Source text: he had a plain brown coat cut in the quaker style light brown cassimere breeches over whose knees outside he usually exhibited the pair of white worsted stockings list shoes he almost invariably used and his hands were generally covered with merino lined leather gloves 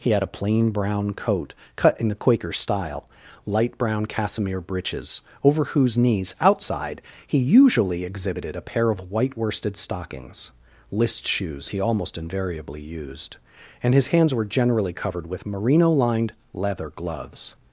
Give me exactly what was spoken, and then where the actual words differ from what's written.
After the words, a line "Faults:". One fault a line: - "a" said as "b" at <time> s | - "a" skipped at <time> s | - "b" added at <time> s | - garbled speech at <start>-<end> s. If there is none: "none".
he had a plain brown coat cut in the quaker style light brown cassimere breeches over whose knees outside he usually exhibited a pair of white worsted stockings list shoes he almost invariably used and his hands were generally covered with merino lined leather gloves
Faults:
- "the" said as "a" at 8.5 s